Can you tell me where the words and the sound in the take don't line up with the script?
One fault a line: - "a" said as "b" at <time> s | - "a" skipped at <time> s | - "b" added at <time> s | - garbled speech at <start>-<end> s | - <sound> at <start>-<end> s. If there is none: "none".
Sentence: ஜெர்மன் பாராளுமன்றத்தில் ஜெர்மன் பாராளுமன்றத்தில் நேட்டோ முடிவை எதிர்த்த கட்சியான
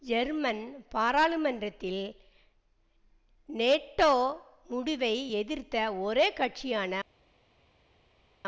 - "ஜெர்மன் பாராளுமன்றத்தில்" skipped at 2.0 s
- "ஒரே" added at 6.0 s